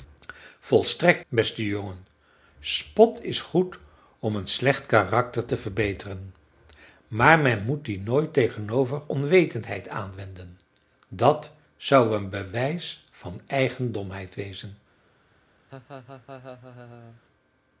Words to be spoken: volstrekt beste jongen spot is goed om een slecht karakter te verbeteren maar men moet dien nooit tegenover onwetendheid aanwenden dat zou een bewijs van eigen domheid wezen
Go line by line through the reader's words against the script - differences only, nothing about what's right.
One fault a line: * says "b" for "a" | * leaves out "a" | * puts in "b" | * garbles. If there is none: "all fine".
all fine